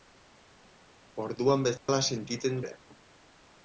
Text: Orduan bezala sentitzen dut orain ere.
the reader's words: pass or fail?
fail